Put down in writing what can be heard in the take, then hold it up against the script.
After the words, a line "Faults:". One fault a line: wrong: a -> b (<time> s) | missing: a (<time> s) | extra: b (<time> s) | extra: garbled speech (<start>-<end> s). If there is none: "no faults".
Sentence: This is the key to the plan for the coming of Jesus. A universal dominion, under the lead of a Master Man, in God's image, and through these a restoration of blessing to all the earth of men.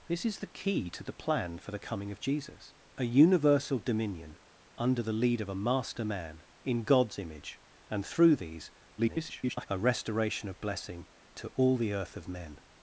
This is the key to the plan for the coming of Jesus. A universal dominion, under the lead of a Master Man, in God's image, and through these [garbled] a restoration of blessing to all the earth of men.
Faults:
extra: garbled speech (9.0-9.7 s)